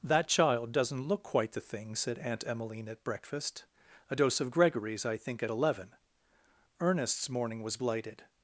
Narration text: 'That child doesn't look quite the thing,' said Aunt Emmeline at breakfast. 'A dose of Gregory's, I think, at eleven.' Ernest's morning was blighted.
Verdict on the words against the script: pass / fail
pass